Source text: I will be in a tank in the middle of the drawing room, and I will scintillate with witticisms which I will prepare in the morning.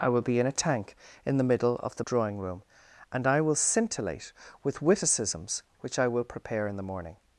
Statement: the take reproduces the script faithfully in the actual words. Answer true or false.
true